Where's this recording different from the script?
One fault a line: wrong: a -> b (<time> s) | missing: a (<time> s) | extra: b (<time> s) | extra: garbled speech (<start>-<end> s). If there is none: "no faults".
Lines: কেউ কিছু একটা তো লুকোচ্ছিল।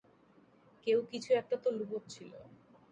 no faults